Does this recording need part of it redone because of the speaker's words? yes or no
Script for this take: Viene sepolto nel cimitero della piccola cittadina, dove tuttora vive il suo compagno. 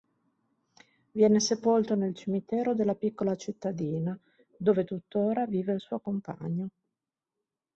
no